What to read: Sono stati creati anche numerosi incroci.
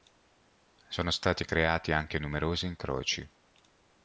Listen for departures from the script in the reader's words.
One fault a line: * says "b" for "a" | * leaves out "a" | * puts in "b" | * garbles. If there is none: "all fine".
all fine